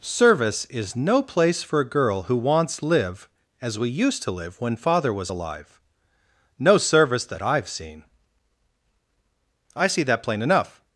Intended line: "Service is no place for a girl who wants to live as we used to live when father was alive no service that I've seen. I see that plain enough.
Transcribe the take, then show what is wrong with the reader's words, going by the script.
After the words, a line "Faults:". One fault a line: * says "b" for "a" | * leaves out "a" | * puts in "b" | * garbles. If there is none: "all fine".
"Service is no place for a girl who wants live as we used to live when father was alive no service that I've seen. I see that plain enough.
Faults:
* leaves out "to"